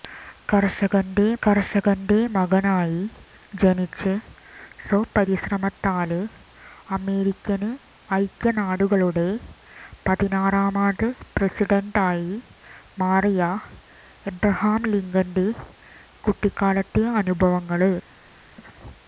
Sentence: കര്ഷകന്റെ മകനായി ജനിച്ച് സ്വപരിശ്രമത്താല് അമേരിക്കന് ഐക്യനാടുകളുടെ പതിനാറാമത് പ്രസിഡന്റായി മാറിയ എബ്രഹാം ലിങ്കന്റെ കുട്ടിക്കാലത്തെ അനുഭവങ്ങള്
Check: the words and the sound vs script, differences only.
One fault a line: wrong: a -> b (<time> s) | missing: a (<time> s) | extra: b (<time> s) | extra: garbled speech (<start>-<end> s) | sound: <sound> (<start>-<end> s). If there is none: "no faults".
extra: കര്ഷകന്റെ (1.4 s)